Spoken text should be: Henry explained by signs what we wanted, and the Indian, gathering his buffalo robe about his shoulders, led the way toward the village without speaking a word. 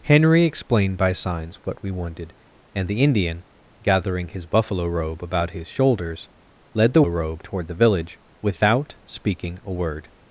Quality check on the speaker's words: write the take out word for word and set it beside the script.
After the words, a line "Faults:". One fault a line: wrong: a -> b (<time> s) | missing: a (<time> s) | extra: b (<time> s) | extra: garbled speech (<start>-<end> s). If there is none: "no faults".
Henry explained by signs what we wanted, and the Indian, gathering his buffalo robe about his shoulders, led the robe toward the village without speaking a word.
Faults:
wrong: way -> robe (7.1 s)